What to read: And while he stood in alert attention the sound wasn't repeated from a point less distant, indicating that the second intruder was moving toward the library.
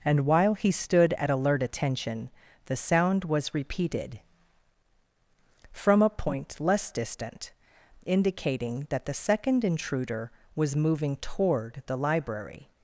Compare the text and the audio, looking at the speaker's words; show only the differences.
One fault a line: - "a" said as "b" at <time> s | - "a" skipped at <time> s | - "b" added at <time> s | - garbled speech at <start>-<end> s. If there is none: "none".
- "in" said as "at" at 1.1 s
- "wasn't" said as "was" at 3.2 s